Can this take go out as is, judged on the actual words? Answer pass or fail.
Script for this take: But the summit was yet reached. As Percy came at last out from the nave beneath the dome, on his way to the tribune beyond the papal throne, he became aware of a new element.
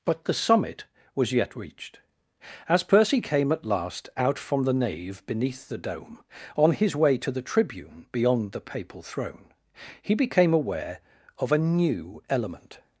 pass